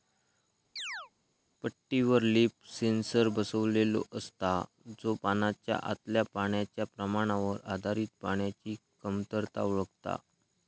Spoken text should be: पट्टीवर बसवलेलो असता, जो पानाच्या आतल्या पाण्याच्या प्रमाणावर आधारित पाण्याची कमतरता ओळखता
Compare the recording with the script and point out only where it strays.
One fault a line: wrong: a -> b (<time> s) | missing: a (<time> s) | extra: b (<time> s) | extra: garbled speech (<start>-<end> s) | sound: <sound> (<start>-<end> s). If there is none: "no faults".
sound: chirp (0.8-1.1 s)
extra: लीफ सेन्सर (2.3 s)